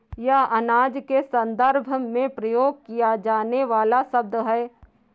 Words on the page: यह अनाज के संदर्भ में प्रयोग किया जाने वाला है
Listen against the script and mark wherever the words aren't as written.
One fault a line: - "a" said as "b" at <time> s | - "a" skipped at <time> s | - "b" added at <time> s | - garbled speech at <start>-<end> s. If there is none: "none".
- "शब्द" added at 4.0 s